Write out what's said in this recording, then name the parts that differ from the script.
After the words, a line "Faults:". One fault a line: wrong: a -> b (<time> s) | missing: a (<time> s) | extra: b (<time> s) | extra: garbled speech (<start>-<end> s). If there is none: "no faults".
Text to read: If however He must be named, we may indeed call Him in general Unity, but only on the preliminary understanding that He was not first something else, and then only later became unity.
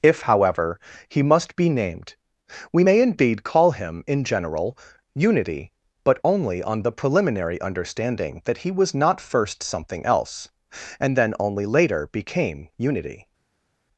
If however He must be named, we may indeed call Him in general Unity, but only on the preliminary understanding that He was not first something else, and then only later became unity.
Faults:
no faults